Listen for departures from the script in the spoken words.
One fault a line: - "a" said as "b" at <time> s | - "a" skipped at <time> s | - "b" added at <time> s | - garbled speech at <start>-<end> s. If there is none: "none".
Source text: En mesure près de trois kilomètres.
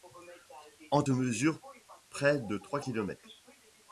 none